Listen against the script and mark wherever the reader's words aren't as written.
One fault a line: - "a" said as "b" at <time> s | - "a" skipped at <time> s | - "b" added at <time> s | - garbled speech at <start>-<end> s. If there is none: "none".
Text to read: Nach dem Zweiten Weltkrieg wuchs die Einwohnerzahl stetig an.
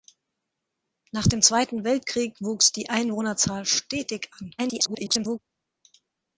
- garbled speech at 4.6-5.4 s